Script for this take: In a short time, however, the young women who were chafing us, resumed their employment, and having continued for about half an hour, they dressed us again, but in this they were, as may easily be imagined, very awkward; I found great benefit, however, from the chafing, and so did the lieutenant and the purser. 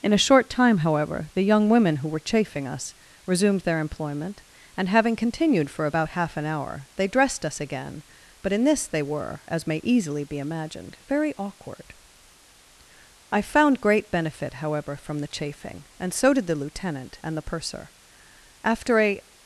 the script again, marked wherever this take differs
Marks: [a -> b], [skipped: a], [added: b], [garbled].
In a short time, however, the young women who were chafing us, resumed their employment, and having continued for about half an hour, they dressed us again, but in this they were, as may easily be imagined, very awkward; I found great benefit, however, from the chafing, and so did the lieutenant and the purser. [added: After a]